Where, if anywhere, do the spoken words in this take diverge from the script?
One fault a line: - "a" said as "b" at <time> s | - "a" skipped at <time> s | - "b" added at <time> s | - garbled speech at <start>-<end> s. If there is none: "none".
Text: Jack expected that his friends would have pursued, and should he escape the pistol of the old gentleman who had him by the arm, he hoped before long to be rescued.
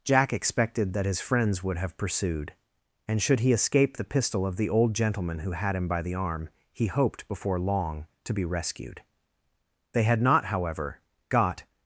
- "They had not however got" added at 9.9 s